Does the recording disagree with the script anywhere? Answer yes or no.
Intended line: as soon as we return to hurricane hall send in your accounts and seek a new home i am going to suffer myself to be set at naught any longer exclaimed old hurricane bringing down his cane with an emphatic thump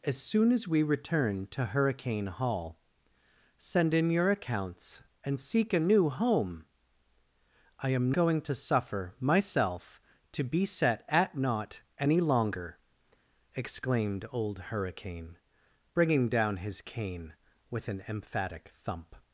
no